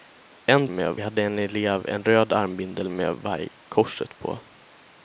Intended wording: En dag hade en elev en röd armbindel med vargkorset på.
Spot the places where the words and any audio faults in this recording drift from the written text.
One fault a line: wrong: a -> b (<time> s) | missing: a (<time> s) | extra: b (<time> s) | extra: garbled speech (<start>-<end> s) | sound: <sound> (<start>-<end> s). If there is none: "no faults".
wrong: dag -> med (0.7 s)